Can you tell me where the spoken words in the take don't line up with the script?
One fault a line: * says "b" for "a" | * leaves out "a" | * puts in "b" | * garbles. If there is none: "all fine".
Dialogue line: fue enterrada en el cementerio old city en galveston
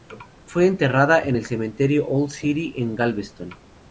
all fine